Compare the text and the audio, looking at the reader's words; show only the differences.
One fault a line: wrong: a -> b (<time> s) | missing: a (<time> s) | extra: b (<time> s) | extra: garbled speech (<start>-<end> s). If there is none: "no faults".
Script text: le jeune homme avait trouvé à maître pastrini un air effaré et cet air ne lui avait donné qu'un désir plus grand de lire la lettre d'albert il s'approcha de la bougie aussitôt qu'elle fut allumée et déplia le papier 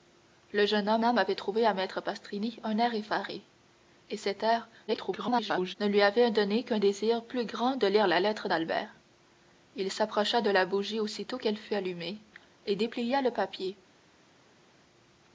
extra: homme (1.0 s)
extra: garbled speech (4.9-5.7 s)